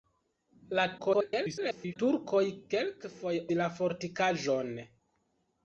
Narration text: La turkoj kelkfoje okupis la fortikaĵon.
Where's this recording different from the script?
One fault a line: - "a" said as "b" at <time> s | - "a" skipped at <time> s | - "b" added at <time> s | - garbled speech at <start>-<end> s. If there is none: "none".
- garbled speech at 1.0-2.0 s
- "okupis" skipped at 3.4 s